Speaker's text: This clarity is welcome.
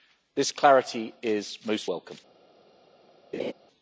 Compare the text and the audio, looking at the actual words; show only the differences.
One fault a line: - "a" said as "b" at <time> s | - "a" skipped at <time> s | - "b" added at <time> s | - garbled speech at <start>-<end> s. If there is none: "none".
- "most" added at 1.7 s